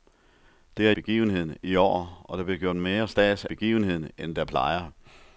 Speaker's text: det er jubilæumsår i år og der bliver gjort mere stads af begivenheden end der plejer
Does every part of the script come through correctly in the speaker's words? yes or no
no